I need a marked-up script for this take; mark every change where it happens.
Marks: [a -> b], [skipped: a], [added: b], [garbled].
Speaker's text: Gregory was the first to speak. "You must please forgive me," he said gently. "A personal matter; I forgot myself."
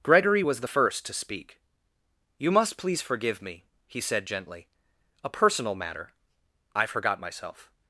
Gregory was the first to speak. "You must please forgive me," he said gently. "A personal matter; I forgot myself."